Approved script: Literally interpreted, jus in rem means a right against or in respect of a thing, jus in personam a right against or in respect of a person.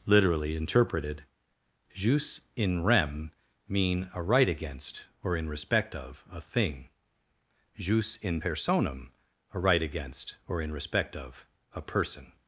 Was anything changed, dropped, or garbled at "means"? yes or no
yes